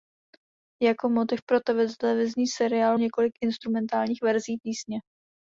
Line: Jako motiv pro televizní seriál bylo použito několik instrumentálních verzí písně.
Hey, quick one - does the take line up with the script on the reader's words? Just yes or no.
no